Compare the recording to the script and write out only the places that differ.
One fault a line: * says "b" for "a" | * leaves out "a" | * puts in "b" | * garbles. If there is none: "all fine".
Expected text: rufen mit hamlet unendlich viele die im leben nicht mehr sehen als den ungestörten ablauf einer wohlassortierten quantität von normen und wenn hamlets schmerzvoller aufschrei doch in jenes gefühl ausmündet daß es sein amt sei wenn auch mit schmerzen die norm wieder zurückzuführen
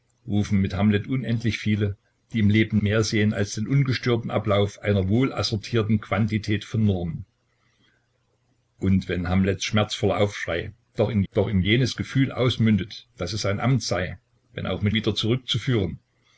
* leaves out "nicht"
* puts in "doch in"
* leaves out "schmerzen die norm"